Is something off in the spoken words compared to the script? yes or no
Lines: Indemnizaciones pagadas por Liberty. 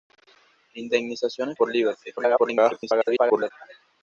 yes